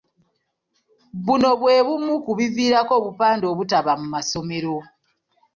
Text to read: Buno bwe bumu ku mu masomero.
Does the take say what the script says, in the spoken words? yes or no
no